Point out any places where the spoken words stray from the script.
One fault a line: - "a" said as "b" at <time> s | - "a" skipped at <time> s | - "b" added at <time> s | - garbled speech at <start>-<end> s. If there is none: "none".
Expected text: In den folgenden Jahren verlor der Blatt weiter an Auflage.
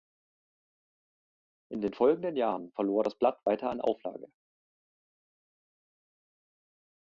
- "der" said as "das" at 3.0 s